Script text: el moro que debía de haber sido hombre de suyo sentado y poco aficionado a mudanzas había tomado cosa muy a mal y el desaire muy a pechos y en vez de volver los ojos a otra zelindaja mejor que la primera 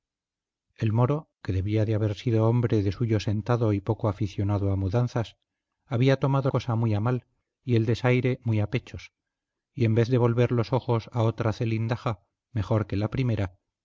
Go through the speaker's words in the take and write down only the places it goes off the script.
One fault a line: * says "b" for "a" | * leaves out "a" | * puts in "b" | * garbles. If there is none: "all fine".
all fine